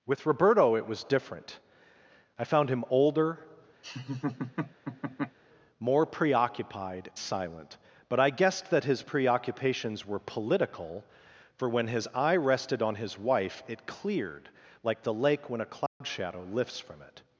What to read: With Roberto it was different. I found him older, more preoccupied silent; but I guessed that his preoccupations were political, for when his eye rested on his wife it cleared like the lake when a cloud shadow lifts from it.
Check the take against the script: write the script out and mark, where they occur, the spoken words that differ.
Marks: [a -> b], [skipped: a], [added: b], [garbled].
With Roberto it was different. I found him older, more preoccupied silent; but I guessed that his preoccupations were political, for when his eye rested on his wife it cleared like the lake when a cloud shadow lifts from it.